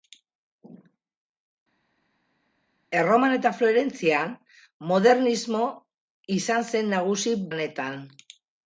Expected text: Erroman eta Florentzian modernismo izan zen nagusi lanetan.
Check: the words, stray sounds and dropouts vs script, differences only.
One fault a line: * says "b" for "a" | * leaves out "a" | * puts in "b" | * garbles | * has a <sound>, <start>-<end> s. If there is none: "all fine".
all fine